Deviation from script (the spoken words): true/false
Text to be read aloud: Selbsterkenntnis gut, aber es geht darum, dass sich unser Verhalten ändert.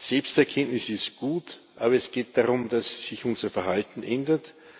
true